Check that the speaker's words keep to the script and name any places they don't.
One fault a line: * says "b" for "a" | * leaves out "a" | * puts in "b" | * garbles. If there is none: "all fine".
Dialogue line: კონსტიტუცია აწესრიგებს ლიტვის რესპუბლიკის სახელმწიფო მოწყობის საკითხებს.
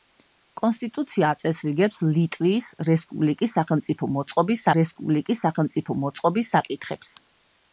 * puts in "რესპუბლიკის სახელმწიფო მოწყობის"